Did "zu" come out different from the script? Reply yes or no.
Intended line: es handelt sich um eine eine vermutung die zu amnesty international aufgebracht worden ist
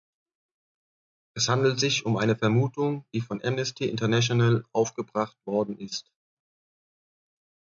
yes